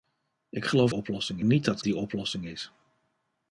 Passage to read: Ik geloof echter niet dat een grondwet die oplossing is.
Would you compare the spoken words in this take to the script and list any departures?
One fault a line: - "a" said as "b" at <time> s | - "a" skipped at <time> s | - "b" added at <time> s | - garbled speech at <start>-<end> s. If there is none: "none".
- "echter" said as "oplossing" at 0.9 s
- "een grondwet" skipped at 1.8 s